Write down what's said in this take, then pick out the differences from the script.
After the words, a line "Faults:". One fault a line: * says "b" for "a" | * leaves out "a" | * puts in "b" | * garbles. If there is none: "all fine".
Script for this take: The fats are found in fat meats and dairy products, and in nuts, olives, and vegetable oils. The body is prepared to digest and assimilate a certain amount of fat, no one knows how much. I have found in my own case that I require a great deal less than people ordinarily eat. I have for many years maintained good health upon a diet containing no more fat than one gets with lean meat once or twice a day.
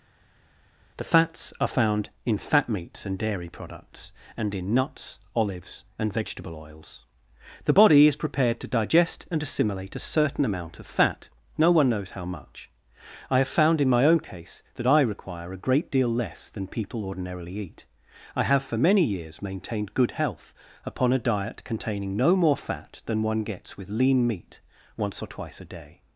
The fats are found in fat meats and dairy products, and in nuts, olives, and vegetable oils. The body is prepared to digest and assimilate a certain amount of fat, no one knows how much. I have found in my own case that I require a great deal less than people ordinarily eat. I have for many years maintained good health upon a diet containing no more fat than one gets with lean meat once or twice a day.
Faults:
all fine